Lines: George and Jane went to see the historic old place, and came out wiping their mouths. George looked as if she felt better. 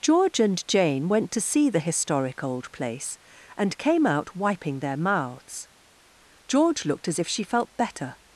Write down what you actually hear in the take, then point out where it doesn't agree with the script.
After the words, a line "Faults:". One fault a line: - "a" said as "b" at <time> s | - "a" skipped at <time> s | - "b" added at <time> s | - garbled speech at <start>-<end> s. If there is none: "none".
George and Jane went to see the historic old place, and came out wiping their mouths. George looked as if she felt better.
Faults:
none